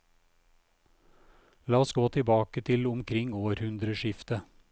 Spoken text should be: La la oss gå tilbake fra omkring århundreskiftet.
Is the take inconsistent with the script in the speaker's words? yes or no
yes